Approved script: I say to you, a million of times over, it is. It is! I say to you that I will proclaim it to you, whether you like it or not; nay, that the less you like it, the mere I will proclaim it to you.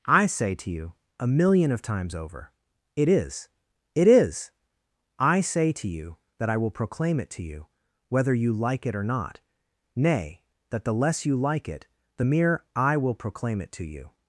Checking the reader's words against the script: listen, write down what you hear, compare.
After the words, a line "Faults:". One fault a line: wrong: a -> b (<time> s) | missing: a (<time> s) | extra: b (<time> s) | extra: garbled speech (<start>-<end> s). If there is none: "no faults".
I say to you, a million of times over, it is. It is! I say to you that I will proclaim it to you, whether you like it or not; nay, that the less you like it, the mere I will proclaim it to you.
Faults:
no faults